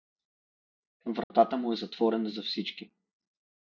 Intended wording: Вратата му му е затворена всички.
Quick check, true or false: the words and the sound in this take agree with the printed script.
false